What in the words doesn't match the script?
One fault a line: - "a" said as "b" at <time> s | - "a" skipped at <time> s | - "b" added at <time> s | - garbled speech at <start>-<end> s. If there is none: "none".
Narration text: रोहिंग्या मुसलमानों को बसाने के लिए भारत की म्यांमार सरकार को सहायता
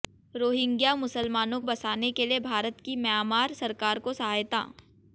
- "को" skipped at 1.6 s